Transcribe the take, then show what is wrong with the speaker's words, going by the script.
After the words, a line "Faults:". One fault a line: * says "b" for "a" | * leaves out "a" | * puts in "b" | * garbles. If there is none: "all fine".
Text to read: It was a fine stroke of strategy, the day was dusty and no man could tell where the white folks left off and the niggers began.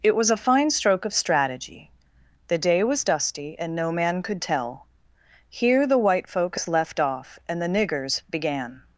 It was a fine stroke of strategy, the day was dusty and no man could tell here the white folks left off and the niggers began.
Faults:
* says "here" for "where"